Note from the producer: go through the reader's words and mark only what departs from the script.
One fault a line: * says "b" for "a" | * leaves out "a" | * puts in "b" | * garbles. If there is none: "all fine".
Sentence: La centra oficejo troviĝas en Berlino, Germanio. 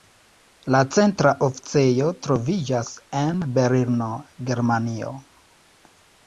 all fine